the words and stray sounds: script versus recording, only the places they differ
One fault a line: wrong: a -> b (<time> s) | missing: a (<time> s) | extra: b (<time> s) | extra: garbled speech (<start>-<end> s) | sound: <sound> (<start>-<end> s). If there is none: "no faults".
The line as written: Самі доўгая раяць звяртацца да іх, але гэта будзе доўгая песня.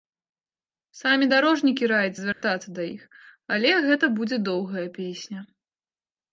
wrong: доўгая -> дарожнікі (1.3 s)
sound: dropout (2.3-2.4 s)